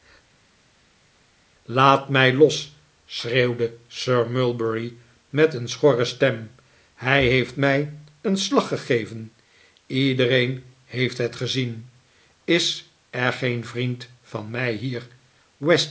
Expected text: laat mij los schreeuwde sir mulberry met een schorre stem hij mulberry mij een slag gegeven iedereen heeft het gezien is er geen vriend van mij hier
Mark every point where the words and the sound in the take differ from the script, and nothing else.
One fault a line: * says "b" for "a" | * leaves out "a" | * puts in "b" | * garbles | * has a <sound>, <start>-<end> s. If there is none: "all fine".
* says "heeft" for "mulberry"